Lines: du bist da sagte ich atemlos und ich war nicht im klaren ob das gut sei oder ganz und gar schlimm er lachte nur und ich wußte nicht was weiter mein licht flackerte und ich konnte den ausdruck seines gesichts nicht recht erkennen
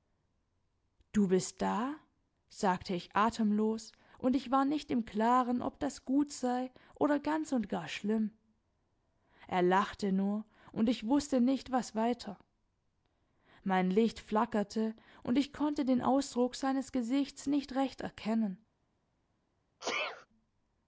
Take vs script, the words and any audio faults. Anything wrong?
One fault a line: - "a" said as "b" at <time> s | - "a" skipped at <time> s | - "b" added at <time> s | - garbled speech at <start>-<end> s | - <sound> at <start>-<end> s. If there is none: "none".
- sneeze at 19.8-20.3 s